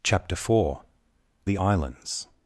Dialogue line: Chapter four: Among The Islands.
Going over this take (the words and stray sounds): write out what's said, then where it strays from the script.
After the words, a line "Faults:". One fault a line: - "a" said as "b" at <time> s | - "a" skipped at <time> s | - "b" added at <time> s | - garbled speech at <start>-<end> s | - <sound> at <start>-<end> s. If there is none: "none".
Chapter four: The Islands.
Faults:
- "Among" skipped at 0.8 s